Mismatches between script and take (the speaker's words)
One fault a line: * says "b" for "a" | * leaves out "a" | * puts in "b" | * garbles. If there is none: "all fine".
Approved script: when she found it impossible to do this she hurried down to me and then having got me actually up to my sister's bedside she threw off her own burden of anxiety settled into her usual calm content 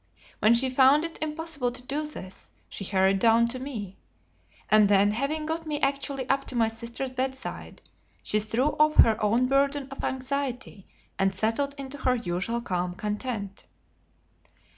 * puts in "and"